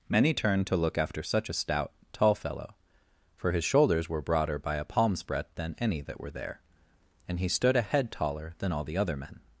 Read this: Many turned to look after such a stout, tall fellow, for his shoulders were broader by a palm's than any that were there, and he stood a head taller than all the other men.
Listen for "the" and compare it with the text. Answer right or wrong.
right